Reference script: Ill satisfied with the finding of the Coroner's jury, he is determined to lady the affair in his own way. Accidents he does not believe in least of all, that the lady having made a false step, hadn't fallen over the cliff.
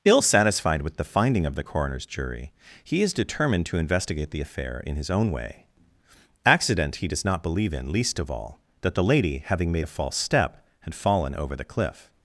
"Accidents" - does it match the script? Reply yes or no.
no